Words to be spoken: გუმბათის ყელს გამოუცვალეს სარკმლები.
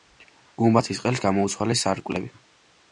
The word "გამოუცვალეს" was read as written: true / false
true